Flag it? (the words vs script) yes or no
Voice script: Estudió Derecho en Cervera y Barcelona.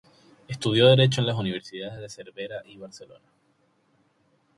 yes